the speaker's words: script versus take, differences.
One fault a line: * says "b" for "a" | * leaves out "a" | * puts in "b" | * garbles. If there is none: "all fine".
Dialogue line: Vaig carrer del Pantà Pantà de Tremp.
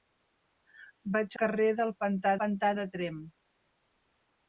all fine